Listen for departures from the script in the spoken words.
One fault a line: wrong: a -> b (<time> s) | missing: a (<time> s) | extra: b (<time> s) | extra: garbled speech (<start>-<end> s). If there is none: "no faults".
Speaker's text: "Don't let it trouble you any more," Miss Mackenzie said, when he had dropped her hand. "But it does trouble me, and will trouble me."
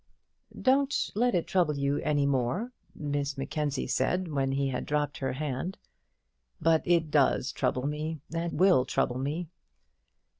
no faults